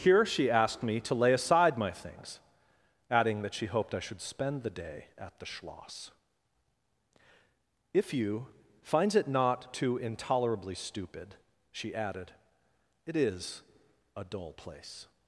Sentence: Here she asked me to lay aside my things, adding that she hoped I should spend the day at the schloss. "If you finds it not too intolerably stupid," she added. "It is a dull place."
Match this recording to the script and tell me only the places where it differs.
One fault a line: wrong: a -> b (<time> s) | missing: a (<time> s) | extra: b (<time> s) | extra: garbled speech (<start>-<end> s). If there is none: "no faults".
no faults